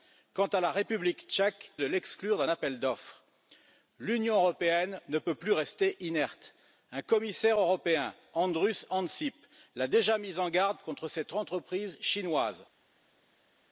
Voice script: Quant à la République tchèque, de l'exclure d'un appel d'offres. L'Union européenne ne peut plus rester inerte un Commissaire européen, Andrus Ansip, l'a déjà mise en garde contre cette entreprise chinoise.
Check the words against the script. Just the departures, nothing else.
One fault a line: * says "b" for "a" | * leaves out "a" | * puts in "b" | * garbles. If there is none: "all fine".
all fine